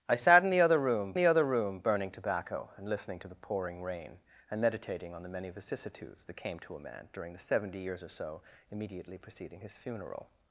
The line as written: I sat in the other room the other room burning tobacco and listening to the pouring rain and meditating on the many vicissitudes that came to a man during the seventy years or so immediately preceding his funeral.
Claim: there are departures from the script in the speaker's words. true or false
false